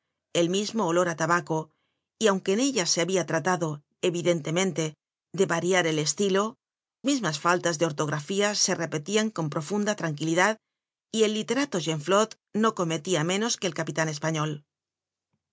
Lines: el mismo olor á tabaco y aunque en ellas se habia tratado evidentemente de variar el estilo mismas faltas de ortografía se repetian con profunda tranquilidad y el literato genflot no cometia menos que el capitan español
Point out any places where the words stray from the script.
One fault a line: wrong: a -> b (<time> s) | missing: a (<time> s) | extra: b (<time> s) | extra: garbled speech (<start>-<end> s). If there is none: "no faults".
no faults